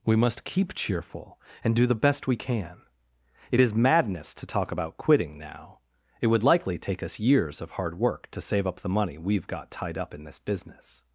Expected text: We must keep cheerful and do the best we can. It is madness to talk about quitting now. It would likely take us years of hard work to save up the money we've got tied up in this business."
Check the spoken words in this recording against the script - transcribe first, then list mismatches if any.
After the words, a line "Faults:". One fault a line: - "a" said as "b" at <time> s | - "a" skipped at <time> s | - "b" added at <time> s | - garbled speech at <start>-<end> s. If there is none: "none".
We must keep cheerful and do the best we can. It is madness to talk about quitting now. It would likely take us years of hard work to save up the money we've got tied up in this business."
Faults:
none